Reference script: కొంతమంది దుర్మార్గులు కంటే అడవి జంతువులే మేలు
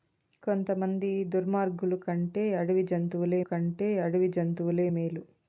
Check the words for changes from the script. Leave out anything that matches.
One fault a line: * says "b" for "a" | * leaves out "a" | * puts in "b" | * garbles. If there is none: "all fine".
* puts in "కంటే అడవి జంతువులే"